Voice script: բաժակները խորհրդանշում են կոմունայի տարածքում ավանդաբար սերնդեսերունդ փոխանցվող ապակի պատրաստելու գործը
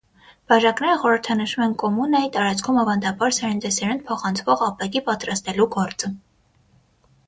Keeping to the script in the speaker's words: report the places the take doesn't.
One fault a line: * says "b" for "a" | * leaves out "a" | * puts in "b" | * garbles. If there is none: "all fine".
all fine